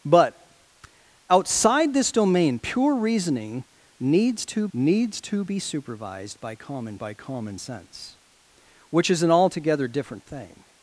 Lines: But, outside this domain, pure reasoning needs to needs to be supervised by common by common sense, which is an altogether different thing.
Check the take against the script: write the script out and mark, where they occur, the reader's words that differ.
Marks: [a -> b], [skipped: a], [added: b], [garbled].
But, outside this domain, pure reasoning needs to needs to be supervised by common by common sense, which is an altogether different thing.